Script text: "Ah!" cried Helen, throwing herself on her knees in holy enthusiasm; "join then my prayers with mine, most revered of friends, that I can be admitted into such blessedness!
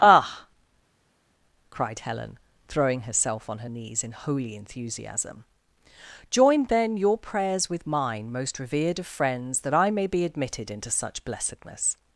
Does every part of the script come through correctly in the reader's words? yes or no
no